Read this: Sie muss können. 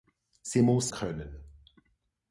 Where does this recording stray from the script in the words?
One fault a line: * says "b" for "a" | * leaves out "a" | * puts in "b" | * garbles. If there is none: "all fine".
all fine